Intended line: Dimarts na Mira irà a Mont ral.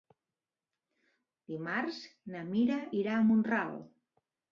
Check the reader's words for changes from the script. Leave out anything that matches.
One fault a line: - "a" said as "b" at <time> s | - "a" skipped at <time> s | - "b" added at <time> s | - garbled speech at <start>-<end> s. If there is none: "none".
none